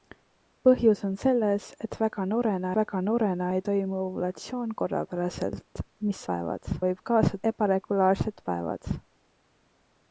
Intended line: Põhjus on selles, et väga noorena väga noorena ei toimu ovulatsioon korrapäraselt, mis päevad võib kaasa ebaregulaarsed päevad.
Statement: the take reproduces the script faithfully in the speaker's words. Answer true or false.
true